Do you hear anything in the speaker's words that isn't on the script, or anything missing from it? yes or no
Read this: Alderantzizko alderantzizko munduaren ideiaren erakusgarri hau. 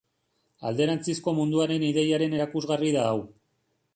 yes